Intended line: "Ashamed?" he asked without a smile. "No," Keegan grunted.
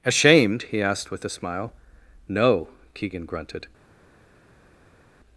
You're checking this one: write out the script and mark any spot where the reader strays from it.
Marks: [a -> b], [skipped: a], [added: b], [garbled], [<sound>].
"Ashamed?" he asked [without -> with] a smile. "No," Keegan grunted.